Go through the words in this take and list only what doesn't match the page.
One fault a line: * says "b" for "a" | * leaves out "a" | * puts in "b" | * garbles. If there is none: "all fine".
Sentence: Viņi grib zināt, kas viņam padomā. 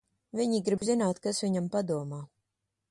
all fine